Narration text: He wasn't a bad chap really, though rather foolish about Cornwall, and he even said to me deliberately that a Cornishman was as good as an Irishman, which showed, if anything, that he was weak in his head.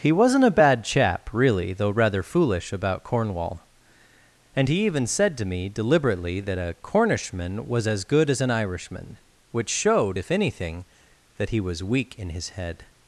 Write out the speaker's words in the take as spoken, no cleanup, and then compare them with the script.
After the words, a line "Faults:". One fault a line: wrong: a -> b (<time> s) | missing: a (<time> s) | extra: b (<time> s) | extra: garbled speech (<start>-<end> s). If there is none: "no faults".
He wasn't a bad chap really, though rather foolish about Cornwall, and he even said to me deliberately that a Cornishman was as good as an Irishman, which showed, if anything, that he was weak in his head.
Faults:
no faults